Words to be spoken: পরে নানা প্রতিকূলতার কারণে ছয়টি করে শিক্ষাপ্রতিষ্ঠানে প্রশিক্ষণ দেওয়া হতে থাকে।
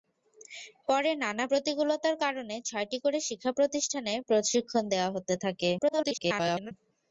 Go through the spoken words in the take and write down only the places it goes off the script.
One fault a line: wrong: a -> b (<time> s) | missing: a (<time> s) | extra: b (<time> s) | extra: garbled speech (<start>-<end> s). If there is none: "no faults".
extra: garbled speech (5.8-6.7 s)